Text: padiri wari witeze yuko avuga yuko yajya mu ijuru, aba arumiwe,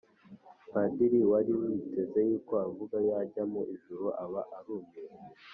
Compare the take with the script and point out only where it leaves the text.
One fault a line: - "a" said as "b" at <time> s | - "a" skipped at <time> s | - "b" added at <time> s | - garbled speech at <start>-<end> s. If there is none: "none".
- "yuko" skipped at 3.0 s